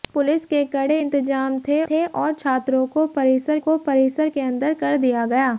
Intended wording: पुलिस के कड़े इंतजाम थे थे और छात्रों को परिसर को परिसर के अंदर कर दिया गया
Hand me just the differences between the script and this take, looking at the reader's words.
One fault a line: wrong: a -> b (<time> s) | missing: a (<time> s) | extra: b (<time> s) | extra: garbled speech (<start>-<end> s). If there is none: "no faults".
no faults